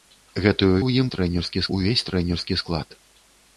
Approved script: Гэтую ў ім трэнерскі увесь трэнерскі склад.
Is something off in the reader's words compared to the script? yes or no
no